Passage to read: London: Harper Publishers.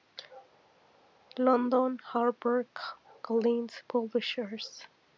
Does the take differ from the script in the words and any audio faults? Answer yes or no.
yes